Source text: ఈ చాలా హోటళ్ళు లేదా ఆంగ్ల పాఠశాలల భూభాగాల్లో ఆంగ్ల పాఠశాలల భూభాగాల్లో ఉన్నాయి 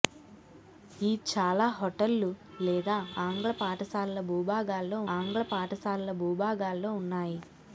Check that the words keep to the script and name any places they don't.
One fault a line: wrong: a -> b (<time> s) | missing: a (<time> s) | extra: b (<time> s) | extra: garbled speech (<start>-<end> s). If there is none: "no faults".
no faults